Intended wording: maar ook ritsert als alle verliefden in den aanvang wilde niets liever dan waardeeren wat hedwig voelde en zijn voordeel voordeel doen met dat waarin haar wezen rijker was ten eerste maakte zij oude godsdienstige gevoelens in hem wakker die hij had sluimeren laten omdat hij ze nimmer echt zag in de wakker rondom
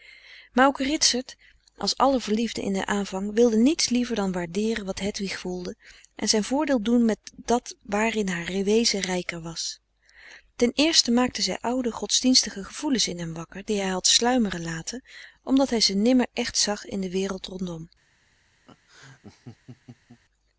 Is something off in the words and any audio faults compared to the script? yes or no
yes